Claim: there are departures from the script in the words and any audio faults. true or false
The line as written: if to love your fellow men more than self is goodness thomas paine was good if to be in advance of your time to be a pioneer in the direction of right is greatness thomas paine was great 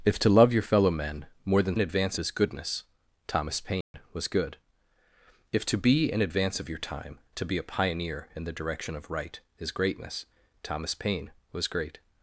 true